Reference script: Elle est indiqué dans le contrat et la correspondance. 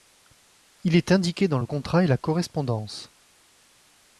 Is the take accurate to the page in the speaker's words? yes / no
no